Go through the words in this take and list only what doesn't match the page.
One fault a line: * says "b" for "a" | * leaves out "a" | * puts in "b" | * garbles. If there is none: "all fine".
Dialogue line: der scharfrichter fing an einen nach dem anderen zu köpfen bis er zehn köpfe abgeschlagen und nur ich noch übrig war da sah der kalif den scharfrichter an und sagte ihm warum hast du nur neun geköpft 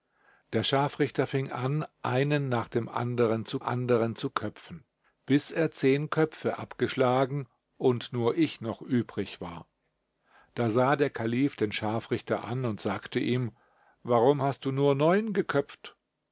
* puts in "anderen zu"